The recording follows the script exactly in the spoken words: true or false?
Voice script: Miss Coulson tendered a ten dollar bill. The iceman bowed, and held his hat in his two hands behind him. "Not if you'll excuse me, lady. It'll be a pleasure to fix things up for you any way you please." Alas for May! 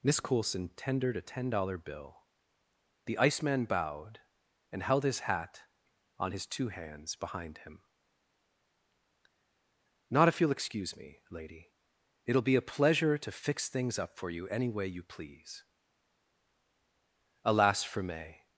false